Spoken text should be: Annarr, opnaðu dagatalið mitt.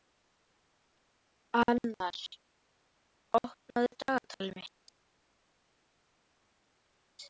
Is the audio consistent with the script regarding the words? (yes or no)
yes